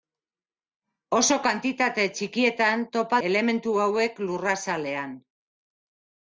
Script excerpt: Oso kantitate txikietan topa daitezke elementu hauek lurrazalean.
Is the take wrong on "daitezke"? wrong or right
wrong